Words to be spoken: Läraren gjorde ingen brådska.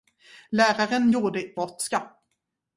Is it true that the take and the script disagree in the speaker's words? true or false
true